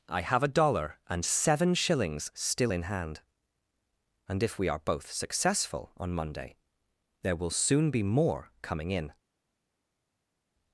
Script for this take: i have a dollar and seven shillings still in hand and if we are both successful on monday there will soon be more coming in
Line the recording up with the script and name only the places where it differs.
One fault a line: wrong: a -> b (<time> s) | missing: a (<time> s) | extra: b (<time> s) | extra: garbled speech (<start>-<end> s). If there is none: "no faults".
no faults